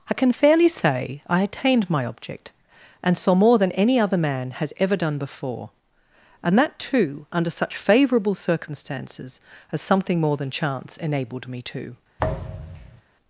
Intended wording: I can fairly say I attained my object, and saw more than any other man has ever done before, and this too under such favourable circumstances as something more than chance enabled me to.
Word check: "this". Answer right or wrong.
wrong